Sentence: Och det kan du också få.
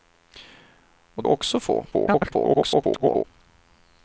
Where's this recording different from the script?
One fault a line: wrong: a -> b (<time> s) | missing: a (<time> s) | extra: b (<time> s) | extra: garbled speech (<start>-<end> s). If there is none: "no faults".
missing: det kan du (1.2 s)
extra: garbled speech (1.9-3.2 s)